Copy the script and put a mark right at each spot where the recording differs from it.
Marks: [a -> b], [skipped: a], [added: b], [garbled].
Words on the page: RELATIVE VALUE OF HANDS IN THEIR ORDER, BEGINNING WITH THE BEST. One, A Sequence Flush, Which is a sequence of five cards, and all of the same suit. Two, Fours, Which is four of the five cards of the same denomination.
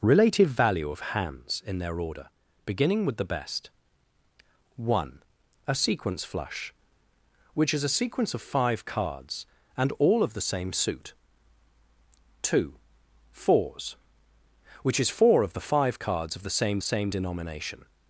RELATIVE VALUE OF HANDS IN THEIR ORDER, BEGINNING WITH THE BEST. One, A Sequence Flush, Which is a sequence of five cards, and all of the same suit. Two, Fours, Which is four of the five cards of the same [added: same] denomination.